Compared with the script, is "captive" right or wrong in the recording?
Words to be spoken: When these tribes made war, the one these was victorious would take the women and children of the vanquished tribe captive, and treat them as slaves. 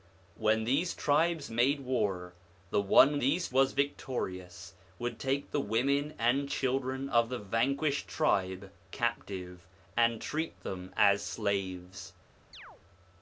right